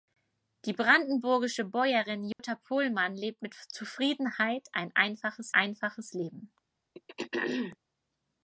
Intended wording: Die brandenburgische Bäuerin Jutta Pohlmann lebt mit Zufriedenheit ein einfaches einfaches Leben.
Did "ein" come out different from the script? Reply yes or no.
no